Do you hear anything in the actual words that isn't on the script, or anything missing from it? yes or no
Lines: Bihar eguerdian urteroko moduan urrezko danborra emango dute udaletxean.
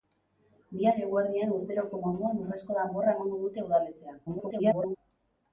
yes